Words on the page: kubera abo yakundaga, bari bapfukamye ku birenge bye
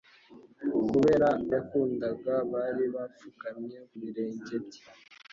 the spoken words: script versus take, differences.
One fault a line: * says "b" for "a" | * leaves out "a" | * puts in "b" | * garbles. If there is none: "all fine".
* leaves out "abo"
* leaves out "ku"